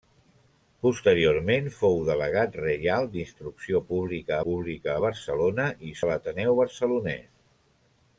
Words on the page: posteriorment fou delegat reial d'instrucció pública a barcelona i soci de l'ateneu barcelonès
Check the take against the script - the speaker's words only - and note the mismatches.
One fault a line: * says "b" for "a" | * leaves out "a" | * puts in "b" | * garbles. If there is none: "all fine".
* puts in "pública"
* leaves out "soci"